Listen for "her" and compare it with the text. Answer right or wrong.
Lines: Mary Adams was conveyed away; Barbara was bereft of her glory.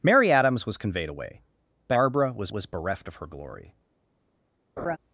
right